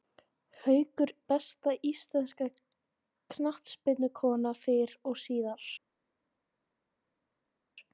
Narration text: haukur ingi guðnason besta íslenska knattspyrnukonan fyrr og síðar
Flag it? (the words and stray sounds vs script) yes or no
yes